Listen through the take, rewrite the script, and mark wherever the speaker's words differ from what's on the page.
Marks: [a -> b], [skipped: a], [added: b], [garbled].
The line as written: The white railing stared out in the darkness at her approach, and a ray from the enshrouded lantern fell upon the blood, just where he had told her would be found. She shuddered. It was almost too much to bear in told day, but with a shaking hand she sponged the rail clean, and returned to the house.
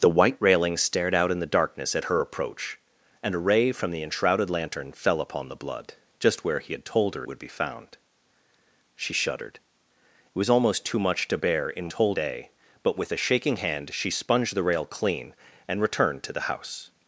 The white railing stared out in the darkness at her approach, and a ray from the enshrouded lantern fell upon the blood, just where he had told her would be found. She shuddered. It was almost too much to bear in told day, but with a shaking hand she sponged the rail clean, and returned to the house.